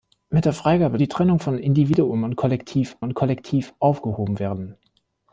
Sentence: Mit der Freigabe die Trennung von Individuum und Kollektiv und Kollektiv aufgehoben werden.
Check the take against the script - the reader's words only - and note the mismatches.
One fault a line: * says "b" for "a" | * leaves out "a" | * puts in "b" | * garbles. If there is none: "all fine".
all fine